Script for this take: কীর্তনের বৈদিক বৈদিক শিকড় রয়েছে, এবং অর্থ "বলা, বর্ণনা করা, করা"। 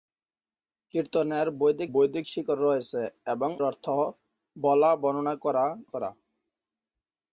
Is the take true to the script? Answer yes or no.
yes